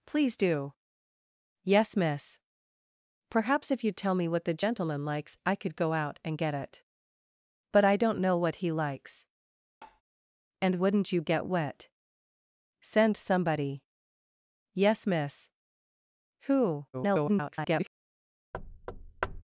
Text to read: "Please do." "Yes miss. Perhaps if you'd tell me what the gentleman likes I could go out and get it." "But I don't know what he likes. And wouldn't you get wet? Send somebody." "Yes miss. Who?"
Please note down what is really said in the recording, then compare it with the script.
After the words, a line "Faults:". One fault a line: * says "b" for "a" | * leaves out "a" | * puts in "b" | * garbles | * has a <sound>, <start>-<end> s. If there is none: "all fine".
"Please do." "Yes miss. Perhaps if you'd tell me what the gentleman likes I could go out and get it." "But I don't know what he likes. And wouldn't you get wet? Send somebody." "Yes miss. Who?" [garbled]
Faults:
* has a tap, 9.8-10.0 s
* garbles
* has a thud, 18.5-19.4 s